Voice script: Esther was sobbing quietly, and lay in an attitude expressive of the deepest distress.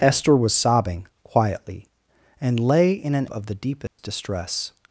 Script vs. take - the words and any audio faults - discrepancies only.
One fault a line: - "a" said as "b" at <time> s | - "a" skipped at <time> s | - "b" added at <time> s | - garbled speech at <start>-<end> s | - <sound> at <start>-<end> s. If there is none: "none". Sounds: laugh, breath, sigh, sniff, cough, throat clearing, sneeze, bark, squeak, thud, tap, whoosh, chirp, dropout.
- "attitude expressive" skipped at 3.3 s
- dropout at 3.9-4.0 s